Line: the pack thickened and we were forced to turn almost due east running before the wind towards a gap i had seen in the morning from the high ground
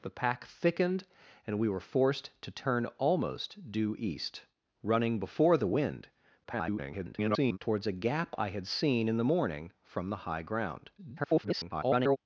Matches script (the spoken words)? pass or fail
fail